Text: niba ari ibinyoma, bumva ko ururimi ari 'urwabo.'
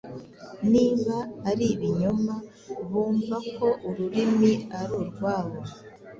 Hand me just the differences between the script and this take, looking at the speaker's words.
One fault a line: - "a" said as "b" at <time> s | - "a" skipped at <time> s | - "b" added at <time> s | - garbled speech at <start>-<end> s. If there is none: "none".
none